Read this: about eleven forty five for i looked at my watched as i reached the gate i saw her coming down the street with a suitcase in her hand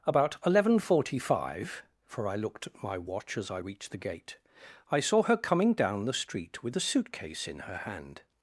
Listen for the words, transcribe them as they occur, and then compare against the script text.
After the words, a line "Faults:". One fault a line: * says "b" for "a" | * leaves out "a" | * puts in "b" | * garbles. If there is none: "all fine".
about eleven forty five for i looked at my watch as i reached the gate i saw her coming down the street with a suitcase in her hand
Faults:
* says "watch" for "watched"